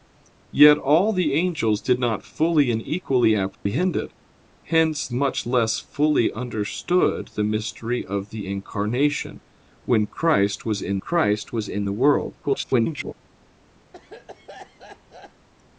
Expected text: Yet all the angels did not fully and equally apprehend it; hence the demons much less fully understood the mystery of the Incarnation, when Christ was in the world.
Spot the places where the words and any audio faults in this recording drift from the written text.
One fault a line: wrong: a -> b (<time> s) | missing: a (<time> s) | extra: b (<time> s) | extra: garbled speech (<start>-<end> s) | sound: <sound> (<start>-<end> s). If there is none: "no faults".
sound: dropout (3.5-3.7 s)
missing: the demons (5.1 s)
extra: Christ was in (11.0 s)
extra: garbled speech (12.4-13.1 s)
sound: cough (13.9-15.5 s)